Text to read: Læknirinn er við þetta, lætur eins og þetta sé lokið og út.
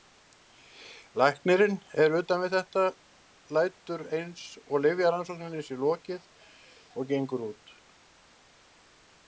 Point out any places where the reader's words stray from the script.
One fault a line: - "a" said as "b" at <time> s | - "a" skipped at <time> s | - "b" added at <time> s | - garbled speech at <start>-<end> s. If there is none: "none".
- "utan" added at 2.2 s
- "þetta" said as "lyfjarannsókninni" at 4.8 s
- "gengur" added at 7.1 s